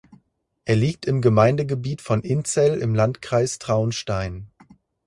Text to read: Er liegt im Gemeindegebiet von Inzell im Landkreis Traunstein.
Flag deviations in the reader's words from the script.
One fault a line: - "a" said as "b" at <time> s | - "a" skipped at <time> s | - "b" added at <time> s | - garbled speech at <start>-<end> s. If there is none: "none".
none